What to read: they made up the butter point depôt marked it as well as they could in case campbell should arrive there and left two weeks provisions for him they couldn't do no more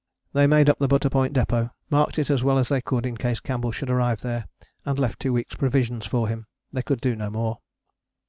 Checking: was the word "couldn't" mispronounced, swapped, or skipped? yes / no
yes